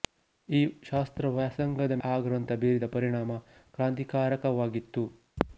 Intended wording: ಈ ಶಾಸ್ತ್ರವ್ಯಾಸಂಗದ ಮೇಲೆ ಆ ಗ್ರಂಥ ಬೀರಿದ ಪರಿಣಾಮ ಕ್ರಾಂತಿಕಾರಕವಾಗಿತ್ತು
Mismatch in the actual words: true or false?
true